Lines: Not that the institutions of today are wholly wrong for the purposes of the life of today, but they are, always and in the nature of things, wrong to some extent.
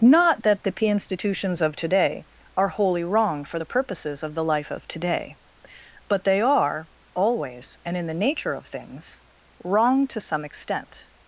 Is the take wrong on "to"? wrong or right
right